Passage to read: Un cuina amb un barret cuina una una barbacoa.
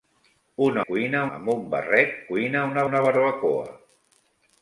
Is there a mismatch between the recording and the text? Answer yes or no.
no